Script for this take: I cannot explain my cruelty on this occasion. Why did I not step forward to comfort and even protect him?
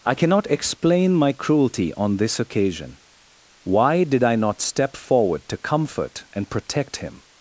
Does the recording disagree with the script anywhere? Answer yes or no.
yes